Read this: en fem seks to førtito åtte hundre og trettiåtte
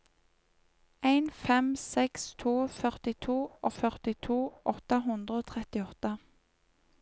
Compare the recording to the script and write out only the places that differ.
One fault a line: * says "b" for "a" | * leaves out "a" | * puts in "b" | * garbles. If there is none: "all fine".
* puts in "førtito"